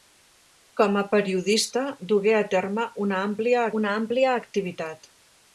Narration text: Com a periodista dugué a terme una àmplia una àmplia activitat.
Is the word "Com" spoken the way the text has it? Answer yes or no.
yes